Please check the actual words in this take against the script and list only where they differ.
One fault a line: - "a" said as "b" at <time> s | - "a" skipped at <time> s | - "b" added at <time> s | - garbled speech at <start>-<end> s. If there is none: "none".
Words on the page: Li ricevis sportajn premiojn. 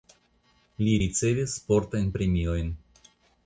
none